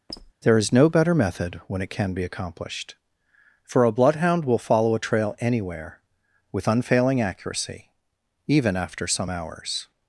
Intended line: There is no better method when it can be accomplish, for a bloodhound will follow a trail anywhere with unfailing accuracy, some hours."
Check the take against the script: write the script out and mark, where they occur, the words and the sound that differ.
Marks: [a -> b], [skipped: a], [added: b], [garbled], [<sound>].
[squeak] There is no better method when it can be [accomplish, -> accomplished] for a bloodhound will follow a trail anywhere with unfailing accuracy, [added: even after] some hours."